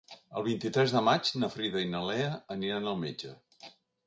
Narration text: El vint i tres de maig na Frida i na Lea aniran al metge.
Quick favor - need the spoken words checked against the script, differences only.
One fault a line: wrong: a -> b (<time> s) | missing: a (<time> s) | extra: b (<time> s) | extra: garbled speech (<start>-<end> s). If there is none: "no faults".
no faults